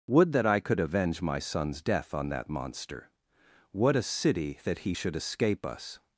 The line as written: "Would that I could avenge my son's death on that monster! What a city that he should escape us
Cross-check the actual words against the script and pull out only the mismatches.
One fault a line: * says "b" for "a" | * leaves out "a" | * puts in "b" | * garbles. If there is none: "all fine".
all fine